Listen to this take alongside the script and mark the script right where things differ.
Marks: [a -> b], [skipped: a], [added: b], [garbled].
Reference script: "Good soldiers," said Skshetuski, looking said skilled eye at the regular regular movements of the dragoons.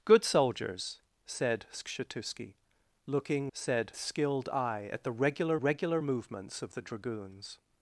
"Good soldiers," said Skshetuski, looking said skilled eye at the regular regular movements of the dragoons.